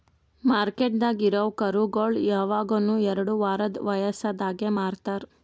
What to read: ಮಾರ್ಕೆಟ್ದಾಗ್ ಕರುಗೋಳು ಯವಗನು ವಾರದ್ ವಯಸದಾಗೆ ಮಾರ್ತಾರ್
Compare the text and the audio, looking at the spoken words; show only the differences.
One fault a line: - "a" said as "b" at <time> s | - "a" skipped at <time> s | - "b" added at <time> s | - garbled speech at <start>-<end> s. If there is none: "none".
- "ಇರವು" added at 1.3 s
- "ಎರಡು" added at 3.1 s